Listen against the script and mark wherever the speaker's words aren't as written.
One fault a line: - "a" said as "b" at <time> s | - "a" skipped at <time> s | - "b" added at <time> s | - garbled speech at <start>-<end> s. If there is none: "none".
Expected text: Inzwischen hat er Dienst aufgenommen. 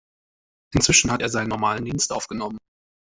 - "seinen normalen" added at 1.3 s